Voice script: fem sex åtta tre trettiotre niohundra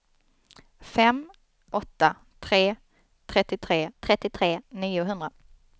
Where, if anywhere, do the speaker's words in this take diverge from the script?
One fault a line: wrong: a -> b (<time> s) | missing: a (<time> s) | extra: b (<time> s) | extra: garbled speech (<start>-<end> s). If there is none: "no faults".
missing: sex (1.2 s)
extra: trettiotre (4.0 s)